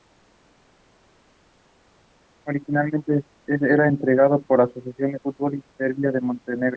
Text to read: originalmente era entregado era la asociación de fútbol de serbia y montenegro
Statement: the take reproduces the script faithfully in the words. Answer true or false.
false